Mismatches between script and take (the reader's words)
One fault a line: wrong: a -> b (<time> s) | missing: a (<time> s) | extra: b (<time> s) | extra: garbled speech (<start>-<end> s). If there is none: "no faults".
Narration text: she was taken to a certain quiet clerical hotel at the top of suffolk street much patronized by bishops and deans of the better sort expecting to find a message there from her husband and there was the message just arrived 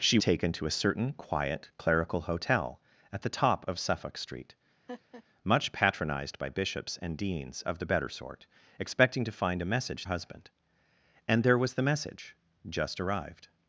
missing: was (0.2 s)
missing: there from her (10.1 s)